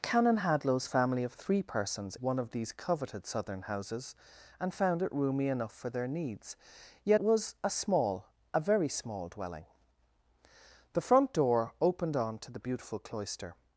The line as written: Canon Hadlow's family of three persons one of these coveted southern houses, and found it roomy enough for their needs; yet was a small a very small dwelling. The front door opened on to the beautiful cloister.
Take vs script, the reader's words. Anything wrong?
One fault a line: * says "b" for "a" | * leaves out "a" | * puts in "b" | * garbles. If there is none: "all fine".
all fine